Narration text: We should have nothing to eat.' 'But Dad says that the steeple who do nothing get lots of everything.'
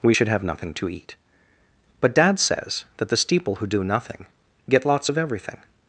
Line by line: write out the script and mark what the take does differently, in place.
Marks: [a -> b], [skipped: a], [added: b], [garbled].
We should have nothing to eat.' 'But Dad says that the steeple who do nothing get lots of everything.'